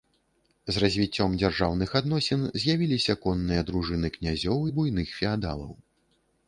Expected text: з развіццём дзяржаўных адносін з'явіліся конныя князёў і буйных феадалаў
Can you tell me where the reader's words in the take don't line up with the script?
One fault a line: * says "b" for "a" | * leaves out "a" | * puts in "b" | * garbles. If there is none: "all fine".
* puts in "дружыны"